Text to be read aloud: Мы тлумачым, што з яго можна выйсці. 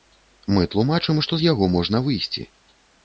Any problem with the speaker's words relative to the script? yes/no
no